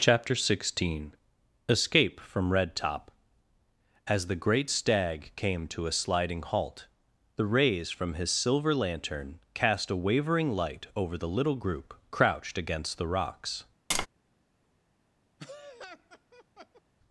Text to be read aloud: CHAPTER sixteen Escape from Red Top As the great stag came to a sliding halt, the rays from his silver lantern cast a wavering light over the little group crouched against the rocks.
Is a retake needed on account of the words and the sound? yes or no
yes